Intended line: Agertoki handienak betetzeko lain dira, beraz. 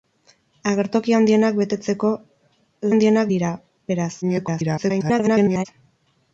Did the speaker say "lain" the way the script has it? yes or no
no